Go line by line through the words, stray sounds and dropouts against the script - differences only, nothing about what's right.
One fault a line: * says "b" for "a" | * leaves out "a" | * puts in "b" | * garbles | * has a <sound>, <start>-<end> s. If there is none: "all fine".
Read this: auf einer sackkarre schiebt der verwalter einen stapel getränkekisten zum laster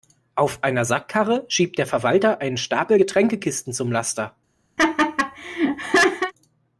* has a laugh, 4.8-6.3 s